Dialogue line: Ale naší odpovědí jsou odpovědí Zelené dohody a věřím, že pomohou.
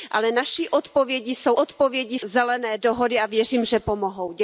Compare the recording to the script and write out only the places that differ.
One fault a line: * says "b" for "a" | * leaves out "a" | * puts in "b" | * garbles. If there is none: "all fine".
all fine